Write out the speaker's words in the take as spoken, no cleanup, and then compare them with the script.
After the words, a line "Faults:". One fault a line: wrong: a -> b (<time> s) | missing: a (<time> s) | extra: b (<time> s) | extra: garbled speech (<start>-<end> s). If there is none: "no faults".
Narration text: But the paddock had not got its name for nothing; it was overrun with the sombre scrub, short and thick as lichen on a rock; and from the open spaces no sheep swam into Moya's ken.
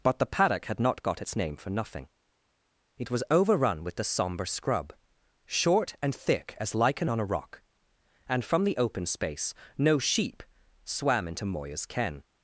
But the paddock had not got its name for nothing; it was overrun with the sombre scrub, short and thick as lichen on a rock; and from the open space no sheep swam into Moya's ken.
Faults:
wrong: spaces -> space (9.1 s)